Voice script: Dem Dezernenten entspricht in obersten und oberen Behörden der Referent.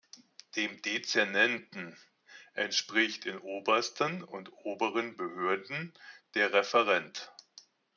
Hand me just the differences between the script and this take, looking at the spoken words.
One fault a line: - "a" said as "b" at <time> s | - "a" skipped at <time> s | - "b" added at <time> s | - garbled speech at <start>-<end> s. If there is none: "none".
none